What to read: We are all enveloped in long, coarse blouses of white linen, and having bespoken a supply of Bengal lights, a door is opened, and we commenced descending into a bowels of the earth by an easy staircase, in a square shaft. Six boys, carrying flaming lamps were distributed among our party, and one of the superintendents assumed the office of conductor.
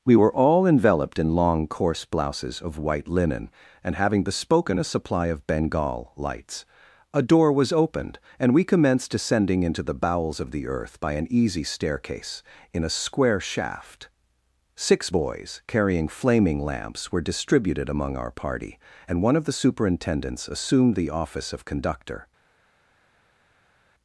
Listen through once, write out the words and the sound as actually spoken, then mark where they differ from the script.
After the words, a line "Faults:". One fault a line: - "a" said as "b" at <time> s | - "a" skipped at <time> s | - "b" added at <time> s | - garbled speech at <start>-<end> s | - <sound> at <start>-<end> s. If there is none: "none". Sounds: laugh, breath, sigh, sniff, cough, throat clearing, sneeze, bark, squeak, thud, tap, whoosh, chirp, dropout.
We were all enveloped in long, coarse blouses of white linen, and having bespoken a supply of Bengal lights, a door was opened, and we commenced descending into the bowels of the earth by an easy staircase, in a square shaft. Six boys, carrying flaming lamps were distributed among our party, and one of the superintendents assumed the office of conductor.
Faults:
- "are" said as "were" at 0.1 s
- "is" said as "was" at 7.5 s
- "a" said as "the" at 9.8 s